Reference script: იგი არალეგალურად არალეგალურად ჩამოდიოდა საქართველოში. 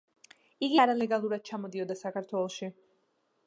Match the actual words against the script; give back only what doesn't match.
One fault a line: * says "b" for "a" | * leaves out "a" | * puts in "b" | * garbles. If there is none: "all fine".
* leaves out "არალეგალურად"